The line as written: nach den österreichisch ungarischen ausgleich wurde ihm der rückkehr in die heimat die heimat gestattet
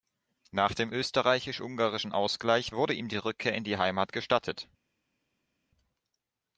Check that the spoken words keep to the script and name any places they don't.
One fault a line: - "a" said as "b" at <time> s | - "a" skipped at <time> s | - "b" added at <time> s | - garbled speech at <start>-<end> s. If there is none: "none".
- "den" said as "dem" at 0.7 s
- "der" said as "die" at 3.1 s
- "die heimat" skipped at 4.1 s